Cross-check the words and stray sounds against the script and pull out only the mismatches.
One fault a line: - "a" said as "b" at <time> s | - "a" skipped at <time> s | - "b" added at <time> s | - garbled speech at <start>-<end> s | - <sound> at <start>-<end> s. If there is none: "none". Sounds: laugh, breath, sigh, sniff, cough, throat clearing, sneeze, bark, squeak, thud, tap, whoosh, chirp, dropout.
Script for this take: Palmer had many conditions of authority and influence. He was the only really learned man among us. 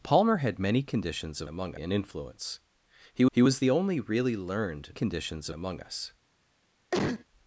- "authority" said as "among" at 1.5 s
- "he" added at 3.3 s
- "man" said as "conditions" at 4.9 s
- cough at 6.9-7.2 s